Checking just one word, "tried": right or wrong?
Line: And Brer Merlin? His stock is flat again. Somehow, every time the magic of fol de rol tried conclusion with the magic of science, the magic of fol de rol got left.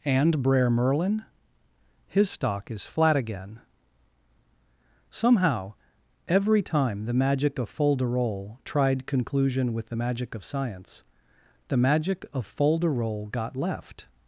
right